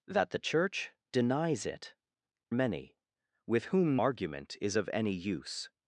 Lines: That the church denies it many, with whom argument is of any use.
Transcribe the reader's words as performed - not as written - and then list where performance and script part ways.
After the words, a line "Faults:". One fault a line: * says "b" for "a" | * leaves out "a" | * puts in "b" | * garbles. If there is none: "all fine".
That the church denies it many, with whom argument is of any use.
Faults:
all fine